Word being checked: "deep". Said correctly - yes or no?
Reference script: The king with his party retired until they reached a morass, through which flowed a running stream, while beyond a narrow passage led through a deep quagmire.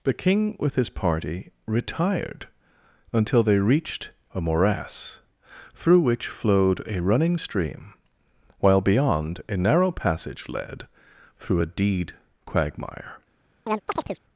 no